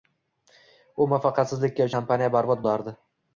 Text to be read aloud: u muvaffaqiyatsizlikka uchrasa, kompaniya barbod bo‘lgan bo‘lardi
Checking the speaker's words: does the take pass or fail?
fail